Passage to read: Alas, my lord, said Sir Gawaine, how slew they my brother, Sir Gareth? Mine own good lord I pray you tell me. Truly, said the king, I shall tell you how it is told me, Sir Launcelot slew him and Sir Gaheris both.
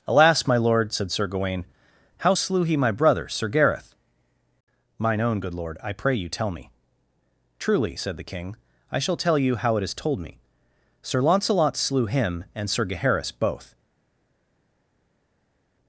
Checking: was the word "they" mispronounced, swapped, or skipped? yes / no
yes